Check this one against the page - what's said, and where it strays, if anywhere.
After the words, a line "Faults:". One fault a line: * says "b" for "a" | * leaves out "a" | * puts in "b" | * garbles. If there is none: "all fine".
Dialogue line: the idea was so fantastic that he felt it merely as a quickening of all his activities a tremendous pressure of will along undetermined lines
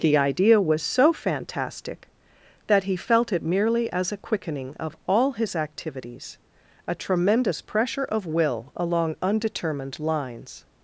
the idea was so fantastic that he felt it merely as a quickening of all his activities a tremendous pressure of will along undetermined lines
Faults:
all fine